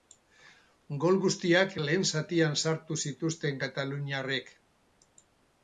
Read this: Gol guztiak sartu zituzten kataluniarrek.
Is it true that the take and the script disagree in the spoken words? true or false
true